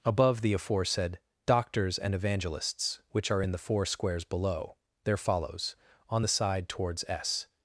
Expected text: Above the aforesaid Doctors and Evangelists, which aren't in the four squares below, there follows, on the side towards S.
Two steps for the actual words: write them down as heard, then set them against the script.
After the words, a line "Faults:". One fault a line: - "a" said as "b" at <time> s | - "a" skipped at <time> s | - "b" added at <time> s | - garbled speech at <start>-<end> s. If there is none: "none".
Above the aforesaid Doctors and Evangelists, which are in the four squares below, there follows, on the side towards S.
Faults:
- "aren't" said as "are" at 3.3 s